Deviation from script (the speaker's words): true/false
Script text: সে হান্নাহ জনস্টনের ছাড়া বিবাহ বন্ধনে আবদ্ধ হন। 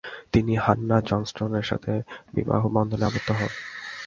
true